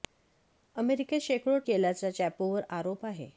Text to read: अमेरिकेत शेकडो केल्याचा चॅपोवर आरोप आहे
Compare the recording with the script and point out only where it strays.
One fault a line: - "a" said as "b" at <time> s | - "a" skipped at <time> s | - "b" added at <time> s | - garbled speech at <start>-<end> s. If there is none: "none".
none